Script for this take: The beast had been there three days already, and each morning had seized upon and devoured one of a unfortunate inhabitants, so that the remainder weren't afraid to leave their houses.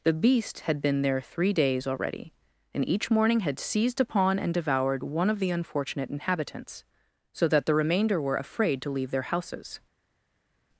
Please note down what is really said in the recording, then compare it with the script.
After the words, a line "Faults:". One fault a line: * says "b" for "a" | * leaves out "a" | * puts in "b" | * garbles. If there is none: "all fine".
The beast had been there three days already, and each morning had seized upon and devoured one of the unfortunate inhabitants, so that the remainder were afraid to leave their houses.
Faults:
* says "the" for "a"
* says "were" for "weren't"